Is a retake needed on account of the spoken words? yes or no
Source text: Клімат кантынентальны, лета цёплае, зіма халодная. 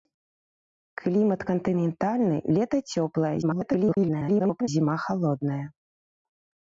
yes